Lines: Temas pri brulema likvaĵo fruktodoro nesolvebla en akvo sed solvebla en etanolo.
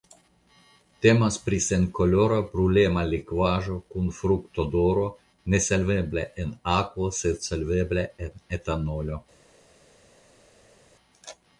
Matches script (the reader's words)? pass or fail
fail